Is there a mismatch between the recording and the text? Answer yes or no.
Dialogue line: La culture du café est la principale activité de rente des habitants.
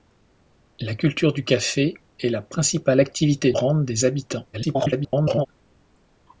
yes